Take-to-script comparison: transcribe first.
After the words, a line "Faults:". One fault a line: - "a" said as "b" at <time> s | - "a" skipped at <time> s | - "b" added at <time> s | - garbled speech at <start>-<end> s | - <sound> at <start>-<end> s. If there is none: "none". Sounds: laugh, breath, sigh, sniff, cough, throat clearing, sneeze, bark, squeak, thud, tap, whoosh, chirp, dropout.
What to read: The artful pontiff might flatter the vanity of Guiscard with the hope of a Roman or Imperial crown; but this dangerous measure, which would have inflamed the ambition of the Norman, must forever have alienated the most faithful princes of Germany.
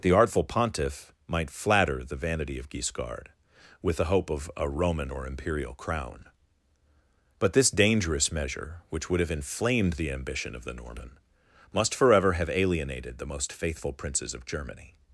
The artful pontiff might flatter the vanity of Guiscard with the hope of a Roman or Imperial crown; but this dangerous measure, which would have inflamed the ambition of the Norman, must forever have alienated the most faithful princes of Germany.
Faults:
none